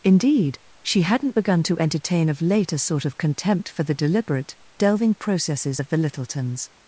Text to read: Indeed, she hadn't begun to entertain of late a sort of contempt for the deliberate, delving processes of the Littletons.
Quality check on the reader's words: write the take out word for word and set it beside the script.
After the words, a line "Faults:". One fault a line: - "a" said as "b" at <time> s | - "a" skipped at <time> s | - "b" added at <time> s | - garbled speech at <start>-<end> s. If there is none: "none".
Indeed, she hadn't begun to entertain of late a sort of contempt for the deliberate, delving processes of the Littletons.
Faults:
none